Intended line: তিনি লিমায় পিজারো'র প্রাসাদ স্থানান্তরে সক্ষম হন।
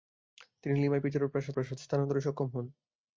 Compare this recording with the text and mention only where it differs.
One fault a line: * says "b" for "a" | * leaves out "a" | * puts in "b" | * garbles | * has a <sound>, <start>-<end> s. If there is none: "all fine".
* puts in "প্রাসাদ"